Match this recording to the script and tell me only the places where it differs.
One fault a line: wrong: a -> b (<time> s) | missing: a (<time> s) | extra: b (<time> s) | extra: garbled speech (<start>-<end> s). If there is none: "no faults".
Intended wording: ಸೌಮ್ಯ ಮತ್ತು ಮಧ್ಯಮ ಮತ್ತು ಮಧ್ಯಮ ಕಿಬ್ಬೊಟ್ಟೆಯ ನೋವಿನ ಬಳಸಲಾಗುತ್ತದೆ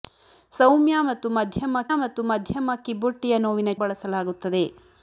no faults